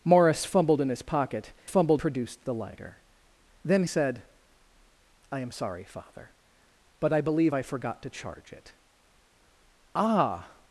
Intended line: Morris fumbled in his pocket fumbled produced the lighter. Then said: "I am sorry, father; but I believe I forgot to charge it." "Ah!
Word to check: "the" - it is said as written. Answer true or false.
true